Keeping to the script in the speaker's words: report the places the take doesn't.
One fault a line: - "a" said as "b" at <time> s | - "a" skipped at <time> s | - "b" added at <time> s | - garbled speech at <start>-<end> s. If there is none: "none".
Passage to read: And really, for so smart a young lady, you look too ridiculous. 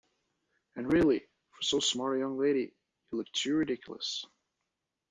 none